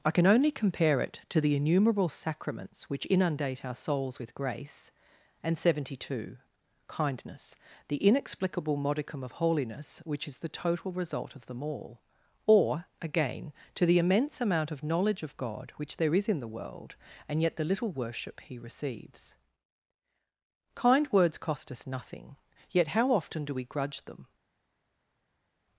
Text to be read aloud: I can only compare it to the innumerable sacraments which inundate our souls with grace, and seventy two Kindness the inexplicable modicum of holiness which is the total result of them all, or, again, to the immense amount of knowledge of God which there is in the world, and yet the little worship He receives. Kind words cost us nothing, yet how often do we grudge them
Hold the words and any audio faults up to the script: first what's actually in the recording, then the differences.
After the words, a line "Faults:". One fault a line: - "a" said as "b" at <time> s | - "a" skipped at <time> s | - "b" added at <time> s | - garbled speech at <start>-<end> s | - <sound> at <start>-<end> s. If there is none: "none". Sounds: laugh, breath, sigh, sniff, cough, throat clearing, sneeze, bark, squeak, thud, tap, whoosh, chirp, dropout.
I can only compare it to the innumerable sacraments which inundate our souls with grace, and seventy two Kindness the inexplicable modicum of holiness which is the total result of them all, or, again, to the immense amount of knowledge of God which there is in the world, and yet the little worship He receives. Kind words cost us nothing, yet how often do we grudge them
Faults:
none